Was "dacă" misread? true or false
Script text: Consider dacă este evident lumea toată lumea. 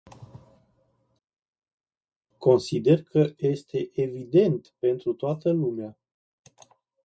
true